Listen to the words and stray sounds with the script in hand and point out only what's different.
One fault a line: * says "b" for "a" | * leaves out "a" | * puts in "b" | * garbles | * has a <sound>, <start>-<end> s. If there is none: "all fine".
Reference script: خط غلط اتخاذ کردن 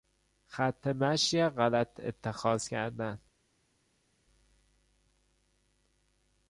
* puts in "مشی"